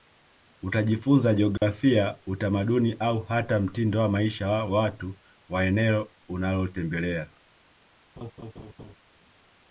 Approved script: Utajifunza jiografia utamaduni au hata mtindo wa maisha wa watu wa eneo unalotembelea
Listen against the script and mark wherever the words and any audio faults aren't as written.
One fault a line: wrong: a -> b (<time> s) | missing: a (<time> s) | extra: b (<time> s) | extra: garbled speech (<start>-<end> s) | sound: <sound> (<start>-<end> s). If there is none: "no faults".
sound: dropout (1.6-1.6 s)
sound: laugh (8.2-9.0 s)